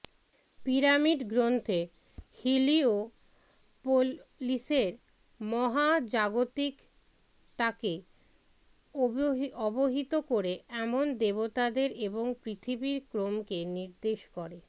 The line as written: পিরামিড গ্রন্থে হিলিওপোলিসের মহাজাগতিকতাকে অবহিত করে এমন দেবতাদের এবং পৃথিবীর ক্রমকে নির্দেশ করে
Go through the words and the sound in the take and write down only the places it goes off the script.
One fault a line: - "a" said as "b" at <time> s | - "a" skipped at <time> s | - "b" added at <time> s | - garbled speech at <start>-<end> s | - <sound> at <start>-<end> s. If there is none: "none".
none